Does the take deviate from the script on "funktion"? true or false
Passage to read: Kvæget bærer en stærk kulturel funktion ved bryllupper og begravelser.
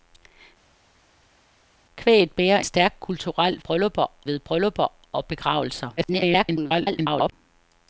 true